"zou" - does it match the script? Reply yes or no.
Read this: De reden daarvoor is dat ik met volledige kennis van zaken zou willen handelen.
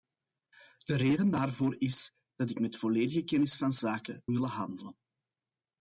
no